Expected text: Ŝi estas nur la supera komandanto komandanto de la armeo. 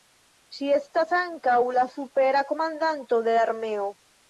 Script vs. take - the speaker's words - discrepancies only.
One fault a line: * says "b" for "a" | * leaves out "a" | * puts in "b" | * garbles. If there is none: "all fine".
* says "ankaŭ" for "nur"
* leaves out "komandanto"